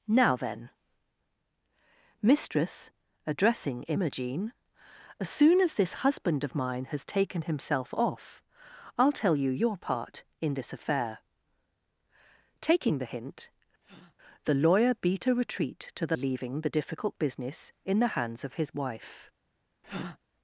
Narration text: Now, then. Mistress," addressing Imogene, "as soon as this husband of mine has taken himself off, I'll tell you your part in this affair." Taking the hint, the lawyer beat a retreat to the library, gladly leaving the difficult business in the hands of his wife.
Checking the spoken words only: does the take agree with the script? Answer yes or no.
no